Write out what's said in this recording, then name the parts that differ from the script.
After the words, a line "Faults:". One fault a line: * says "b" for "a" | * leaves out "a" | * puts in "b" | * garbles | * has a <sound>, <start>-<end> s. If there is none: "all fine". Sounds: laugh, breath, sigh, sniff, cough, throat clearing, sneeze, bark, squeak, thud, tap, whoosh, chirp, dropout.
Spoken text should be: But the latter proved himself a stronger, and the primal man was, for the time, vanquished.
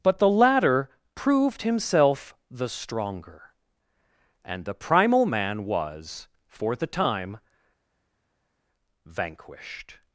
But the latter proved himself the stronger, and the primal man was, for the time, vanquished.
Faults:
* says "the" for "a"